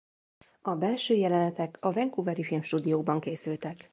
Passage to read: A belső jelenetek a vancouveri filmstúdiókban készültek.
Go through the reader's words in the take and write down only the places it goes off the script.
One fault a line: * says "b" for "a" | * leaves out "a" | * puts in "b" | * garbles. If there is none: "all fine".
all fine